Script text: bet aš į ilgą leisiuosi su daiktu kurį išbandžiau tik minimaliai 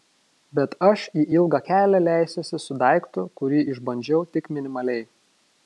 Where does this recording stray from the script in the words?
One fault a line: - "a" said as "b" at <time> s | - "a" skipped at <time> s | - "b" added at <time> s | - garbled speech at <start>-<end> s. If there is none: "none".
- "kelią" added at 1.7 s